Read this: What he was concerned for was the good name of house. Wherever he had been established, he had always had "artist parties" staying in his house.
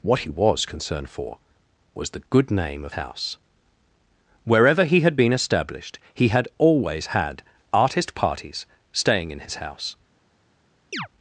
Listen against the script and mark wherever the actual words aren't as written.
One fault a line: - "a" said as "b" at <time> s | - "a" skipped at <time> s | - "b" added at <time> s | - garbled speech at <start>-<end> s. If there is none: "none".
none